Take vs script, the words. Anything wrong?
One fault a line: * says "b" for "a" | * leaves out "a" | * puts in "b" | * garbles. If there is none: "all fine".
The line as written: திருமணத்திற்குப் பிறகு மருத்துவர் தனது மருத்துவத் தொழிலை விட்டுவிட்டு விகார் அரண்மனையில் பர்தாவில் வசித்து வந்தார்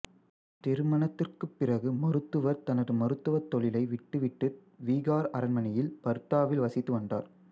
all fine